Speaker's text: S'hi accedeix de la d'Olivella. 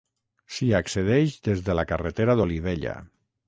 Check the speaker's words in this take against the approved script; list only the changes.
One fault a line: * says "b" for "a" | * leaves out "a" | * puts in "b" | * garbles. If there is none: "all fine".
* puts in "des"
* puts in "carretera"